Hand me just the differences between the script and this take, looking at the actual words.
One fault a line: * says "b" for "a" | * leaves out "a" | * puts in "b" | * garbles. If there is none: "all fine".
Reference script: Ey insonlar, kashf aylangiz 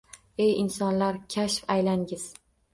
all fine